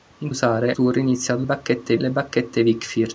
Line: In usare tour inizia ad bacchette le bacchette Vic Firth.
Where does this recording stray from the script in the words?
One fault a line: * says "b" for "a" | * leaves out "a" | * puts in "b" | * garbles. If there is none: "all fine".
all fine